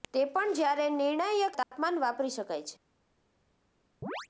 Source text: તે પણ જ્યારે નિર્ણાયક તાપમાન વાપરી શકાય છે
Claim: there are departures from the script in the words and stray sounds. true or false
true